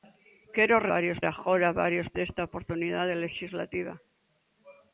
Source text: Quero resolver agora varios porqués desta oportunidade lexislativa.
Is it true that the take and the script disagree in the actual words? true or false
true